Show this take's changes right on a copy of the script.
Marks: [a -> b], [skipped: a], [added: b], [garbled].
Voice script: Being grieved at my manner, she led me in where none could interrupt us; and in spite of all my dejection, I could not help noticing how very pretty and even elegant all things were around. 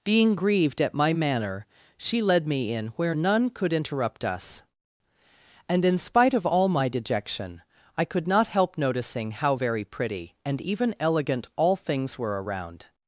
Being grieved at my manner, she led me in where none could interrupt us; and in spite of all my dejection, I could not help noticing how very pretty and even elegant all things were around.